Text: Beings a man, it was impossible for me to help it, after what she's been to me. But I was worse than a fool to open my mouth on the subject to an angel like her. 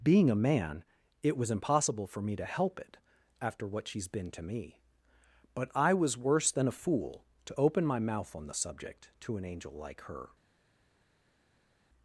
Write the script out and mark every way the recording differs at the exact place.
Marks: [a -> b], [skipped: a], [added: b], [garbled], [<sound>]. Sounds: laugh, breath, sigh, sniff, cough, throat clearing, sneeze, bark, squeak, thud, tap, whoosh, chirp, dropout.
[Beings -> Being] a man, it was impossible for me to help it, after what she's been to me. But I was worse than a fool to open my mouth on the subject to an angel like her.